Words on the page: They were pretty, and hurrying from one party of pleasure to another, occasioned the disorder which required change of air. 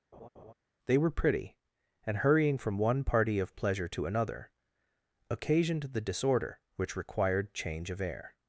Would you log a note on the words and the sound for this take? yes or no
yes